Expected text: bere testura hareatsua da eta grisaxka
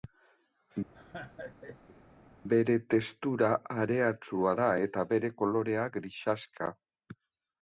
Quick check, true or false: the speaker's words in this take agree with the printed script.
false